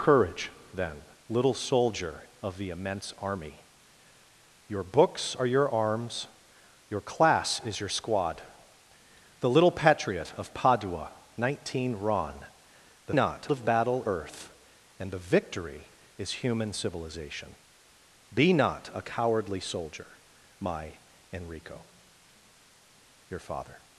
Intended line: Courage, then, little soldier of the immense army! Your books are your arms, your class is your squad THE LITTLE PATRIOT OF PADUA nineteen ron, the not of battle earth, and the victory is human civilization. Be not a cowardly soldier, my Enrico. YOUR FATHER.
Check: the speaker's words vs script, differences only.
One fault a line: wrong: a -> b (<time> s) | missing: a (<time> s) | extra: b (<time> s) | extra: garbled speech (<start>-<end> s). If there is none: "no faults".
no faults